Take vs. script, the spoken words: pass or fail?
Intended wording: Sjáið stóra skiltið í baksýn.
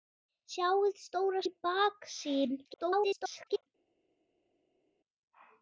fail